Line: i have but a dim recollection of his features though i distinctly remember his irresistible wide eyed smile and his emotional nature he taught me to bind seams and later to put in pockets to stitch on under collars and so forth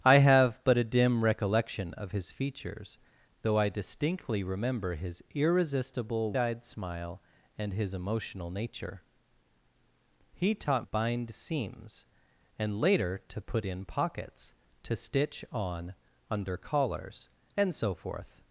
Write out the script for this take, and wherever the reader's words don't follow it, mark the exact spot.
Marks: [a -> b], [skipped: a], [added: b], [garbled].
i have but a dim recollection of his features though i distinctly remember his irresistible [skipped: wide] eyed smile and his emotional nature he taught [skipped: me to] bind seams and later to put in pockets to stitch on under collars and so forth